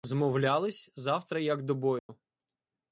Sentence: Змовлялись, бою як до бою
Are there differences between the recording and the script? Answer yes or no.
yes